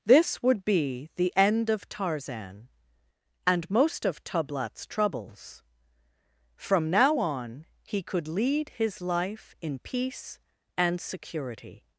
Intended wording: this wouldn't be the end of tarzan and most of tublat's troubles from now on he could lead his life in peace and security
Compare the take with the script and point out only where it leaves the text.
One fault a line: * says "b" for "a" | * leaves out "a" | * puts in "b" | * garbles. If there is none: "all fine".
* says "would" for "wouldn't"